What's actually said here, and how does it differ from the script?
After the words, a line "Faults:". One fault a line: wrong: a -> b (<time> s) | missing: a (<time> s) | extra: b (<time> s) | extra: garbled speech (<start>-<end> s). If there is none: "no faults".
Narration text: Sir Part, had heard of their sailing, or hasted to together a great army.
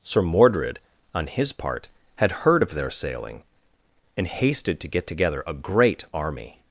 Sir Mordred, on his part, had heard of their sailing, and hasted to get together a great army.
Faults:
extra: Mordred on his (0.2 s)
wrong: or -> and (4.2 s)
extra: get (4.9 s)